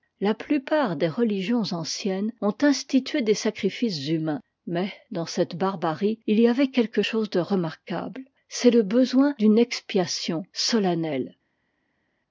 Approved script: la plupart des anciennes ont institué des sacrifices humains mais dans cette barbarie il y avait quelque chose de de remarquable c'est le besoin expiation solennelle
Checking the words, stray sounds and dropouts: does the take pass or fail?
fail